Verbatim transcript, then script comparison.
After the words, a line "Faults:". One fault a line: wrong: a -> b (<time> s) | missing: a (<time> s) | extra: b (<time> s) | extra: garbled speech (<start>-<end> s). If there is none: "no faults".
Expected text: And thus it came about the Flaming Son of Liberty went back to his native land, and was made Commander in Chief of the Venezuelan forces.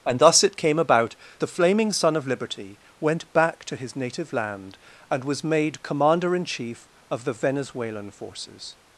And thus it came about the Flaming Son of Liberty went back to his native land, and was made Commander in Chief of the Venezuelan forces.
Faults:
no faults